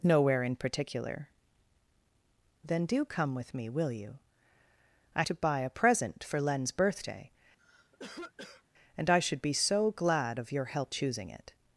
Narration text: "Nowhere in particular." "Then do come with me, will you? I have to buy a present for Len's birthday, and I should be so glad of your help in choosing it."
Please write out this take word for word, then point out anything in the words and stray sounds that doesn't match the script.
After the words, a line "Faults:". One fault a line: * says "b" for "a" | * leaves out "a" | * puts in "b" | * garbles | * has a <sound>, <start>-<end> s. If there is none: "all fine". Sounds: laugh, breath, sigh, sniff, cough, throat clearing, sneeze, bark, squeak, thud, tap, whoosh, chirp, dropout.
"Nowhere in particular." "Then do come with me, will you? I to buy a present for Len's birthday, and I should be so glad of your help choosing it."
Faults:
* leaves out "have"
* has a cough, 7.6-8.6 s
* leaves out "in"